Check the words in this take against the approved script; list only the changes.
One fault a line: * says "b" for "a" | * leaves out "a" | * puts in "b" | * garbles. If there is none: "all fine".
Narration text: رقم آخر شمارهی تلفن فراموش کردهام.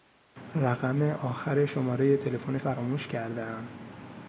all fine